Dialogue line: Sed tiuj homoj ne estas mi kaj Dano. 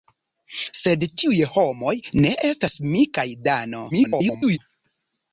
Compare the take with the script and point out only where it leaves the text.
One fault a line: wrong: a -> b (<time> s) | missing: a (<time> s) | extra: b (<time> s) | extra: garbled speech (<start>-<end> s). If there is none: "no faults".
extra: garbled speech (3.9-4.6 s)